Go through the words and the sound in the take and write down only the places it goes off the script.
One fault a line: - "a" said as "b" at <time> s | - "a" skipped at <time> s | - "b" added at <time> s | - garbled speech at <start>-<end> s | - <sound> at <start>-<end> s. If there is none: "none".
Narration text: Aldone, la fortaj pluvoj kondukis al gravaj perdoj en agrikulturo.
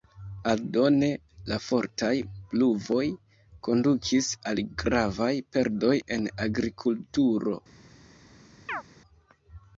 - chirp at 8.7-8.8 s